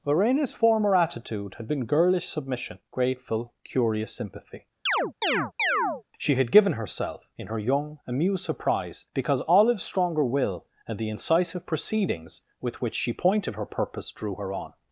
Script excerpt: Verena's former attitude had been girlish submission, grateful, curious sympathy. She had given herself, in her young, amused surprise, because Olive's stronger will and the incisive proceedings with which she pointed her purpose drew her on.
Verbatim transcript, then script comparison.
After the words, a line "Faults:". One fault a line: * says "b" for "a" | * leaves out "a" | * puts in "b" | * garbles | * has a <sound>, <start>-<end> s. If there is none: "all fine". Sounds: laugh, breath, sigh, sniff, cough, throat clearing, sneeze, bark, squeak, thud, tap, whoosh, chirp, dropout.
Verena's former attitude had been girlish submission, grateful, curious sympathy. She had given herself, in her young, amused surprise, because Olive's stronger will and the incisive proceedings with which she pointed her purpose drew her on.
Faults:
* has a chirp, 4.9-6.0 s